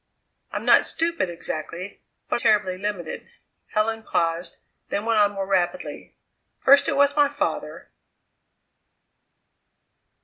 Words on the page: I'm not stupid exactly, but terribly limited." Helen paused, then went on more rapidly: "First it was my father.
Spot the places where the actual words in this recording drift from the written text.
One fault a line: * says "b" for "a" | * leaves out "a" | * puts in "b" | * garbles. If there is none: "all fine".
all fine